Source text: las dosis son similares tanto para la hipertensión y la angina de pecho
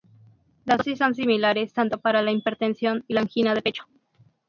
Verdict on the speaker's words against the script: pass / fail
pass